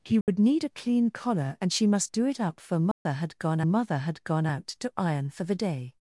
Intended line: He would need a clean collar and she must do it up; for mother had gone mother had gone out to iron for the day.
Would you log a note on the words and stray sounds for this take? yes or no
yes